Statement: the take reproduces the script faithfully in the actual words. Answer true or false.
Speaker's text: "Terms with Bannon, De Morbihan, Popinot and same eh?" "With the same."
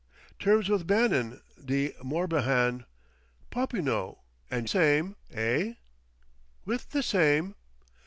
true